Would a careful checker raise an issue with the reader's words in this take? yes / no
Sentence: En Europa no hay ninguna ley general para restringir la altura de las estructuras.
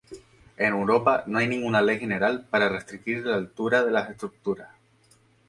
no